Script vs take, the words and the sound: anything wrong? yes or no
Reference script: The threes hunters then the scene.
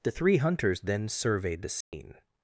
yes